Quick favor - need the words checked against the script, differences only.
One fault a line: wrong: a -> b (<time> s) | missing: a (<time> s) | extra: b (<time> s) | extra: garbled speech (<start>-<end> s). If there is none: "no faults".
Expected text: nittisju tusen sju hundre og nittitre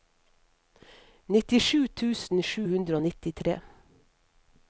no faults